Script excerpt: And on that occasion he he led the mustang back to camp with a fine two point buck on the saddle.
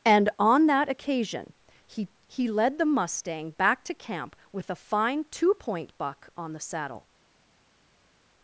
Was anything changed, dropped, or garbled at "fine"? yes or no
no